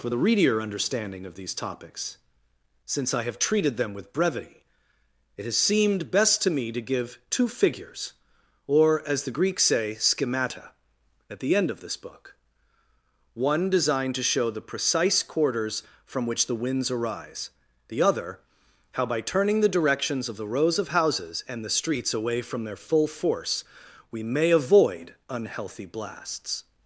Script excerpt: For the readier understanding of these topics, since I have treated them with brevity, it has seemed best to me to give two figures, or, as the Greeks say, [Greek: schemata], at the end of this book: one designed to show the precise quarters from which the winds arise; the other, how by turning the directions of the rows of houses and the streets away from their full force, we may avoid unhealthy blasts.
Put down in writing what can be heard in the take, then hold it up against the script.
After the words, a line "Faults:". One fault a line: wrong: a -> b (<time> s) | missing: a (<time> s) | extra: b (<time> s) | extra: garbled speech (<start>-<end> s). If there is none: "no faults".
For the readier understanding of these topics, since I have treated them with brevity, it has seemed best to me to give two figures, or, as the Greeks say: schemata], at the end of this book: one designed to show the precise quarters from which the winds arise; the other, how by turning the directions of the rows of houses and the streets away from their full force, we may avoid unhealthy blasts.
Faults:
missing: Greek (9.9 s)